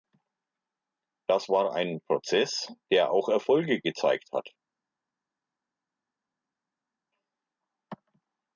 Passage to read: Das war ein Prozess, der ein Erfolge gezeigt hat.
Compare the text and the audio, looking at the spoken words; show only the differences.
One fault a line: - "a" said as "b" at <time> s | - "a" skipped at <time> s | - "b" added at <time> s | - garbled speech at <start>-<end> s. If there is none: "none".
- "ein" said as "auch" at 3.1 s